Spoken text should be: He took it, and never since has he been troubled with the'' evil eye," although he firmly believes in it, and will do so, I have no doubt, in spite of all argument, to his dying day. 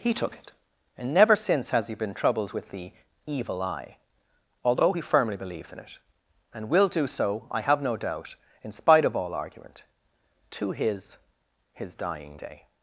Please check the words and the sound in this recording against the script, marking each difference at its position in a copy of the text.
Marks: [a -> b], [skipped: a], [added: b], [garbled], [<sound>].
He took it, and never since has he been troubled with the'' evil eye," although he firmly believes in it, and will do so, I have no doubt, in spite of all argument, to his [added: his] dying day.